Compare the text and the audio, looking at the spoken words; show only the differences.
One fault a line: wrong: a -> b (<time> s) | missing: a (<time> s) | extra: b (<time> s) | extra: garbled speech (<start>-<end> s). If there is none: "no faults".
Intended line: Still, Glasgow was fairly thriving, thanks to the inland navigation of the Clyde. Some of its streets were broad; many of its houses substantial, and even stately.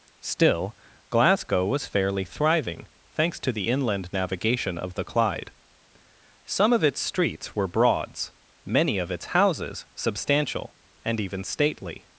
wrong: broad -> broads (7.7 s)